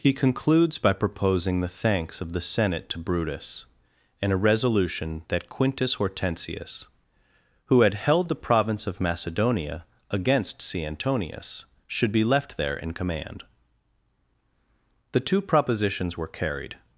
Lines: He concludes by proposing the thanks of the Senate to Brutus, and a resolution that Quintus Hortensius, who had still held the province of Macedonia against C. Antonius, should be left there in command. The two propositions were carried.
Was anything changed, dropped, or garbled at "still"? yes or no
yes